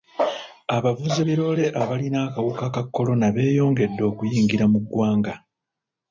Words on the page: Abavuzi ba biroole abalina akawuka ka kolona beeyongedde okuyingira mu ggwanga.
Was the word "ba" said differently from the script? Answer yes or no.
yes